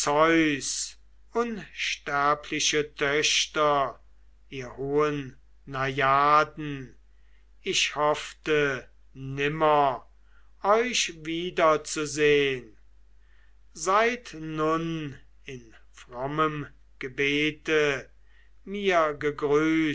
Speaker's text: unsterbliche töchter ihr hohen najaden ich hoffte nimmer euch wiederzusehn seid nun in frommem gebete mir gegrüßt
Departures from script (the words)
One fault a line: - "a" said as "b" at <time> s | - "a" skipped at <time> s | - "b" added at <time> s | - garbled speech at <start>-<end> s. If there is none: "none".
none